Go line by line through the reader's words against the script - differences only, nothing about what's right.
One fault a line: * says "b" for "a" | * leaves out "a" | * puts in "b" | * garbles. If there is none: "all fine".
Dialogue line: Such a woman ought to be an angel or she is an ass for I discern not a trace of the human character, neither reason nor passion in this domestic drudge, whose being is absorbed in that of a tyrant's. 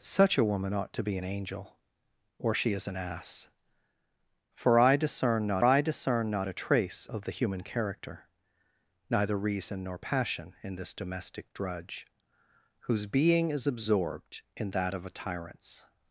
* puts in "I discern not"